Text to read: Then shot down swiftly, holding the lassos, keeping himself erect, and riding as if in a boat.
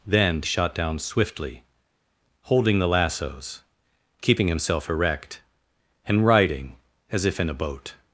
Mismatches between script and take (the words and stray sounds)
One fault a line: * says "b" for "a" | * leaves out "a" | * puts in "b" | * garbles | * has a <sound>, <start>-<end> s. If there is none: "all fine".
all fine